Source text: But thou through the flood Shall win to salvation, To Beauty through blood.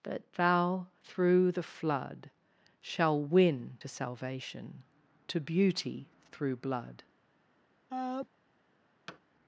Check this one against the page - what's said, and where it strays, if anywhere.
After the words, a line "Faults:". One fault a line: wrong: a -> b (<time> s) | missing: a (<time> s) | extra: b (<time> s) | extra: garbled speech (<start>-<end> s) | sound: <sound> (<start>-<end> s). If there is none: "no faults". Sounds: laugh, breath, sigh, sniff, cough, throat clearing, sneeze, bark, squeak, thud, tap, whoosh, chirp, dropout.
But thou through the flood Shall win to salvation, To Beauty through blood.
Faults:
sound: sneeze (7.9-8.3 s)
sound: thud (9.1-9.2 s)